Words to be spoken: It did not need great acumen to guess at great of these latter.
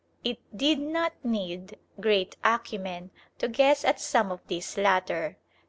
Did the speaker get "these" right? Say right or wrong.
right